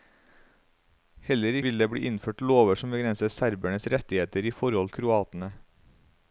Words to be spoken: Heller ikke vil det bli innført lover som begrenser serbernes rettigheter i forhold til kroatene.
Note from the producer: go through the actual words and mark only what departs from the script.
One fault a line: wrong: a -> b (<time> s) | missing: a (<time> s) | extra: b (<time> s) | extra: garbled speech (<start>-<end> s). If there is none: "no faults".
missing: ikke (1.6 s)
missing: til (4.9 s)